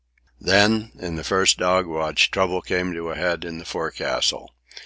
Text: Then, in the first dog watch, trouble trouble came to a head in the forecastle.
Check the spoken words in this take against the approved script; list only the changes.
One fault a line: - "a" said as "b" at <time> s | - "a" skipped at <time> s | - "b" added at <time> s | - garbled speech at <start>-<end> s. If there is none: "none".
- "trouble" skipped at 2.6 s